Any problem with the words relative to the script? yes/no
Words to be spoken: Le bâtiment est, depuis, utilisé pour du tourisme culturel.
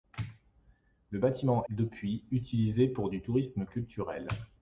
yes